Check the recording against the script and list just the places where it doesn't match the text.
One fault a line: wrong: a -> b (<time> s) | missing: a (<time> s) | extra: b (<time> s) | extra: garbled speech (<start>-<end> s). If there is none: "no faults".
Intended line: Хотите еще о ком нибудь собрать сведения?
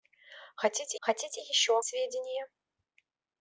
extra: хотите (1.0 s)
missing: ком нибудь собрать (1.8 s)